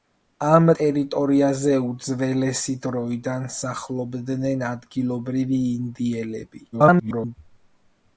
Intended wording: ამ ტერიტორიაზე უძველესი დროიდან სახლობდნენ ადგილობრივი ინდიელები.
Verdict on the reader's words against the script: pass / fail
fail